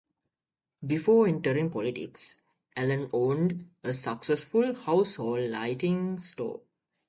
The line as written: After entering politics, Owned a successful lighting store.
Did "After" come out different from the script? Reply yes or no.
yes